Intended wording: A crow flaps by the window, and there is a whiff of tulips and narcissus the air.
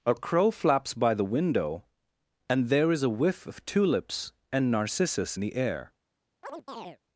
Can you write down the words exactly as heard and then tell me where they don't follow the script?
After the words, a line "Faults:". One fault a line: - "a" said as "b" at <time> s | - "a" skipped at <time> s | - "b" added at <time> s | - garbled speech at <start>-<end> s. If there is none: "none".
A crow flaps by the window, and there is a whiff of tulips and narcissus the air.
Faults:
none